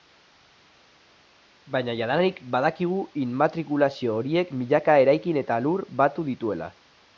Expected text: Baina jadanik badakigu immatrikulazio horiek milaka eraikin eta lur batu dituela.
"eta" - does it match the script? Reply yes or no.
yes